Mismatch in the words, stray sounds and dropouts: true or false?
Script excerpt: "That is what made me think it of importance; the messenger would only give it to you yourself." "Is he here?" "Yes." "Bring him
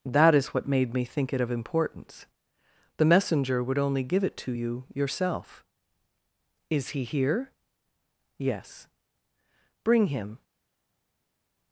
false